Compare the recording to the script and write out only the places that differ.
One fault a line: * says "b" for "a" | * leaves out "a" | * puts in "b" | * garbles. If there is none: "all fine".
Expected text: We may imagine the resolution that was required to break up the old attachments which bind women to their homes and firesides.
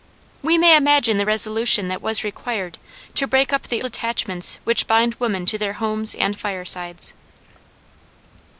* leaves out "old"